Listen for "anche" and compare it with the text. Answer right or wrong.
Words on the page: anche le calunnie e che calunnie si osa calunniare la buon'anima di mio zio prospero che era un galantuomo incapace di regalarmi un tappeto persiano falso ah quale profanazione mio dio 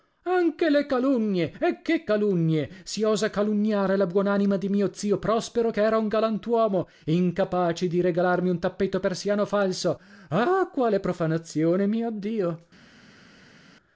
right